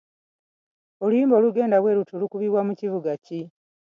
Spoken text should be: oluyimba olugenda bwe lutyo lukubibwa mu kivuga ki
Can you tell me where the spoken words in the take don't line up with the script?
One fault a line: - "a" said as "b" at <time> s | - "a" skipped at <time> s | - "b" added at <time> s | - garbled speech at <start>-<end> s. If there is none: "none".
none